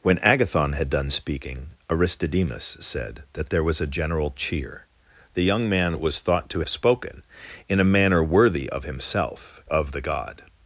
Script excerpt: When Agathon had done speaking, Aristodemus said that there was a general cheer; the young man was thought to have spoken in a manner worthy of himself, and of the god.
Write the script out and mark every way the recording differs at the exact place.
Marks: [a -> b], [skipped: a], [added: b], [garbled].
When Agathon had done speaking, Aristodemus said that there was a general cheer; the young man was thought to [skipped: have] spoken in a manner worthy of himself, [skipped: and] of the god.